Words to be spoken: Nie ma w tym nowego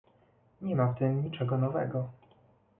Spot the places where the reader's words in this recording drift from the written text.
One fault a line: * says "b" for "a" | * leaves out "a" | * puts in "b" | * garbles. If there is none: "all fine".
* puts in "niczego"